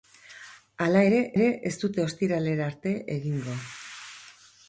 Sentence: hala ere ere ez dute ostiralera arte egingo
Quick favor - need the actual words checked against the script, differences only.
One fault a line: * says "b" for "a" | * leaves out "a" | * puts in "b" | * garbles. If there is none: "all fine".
all fine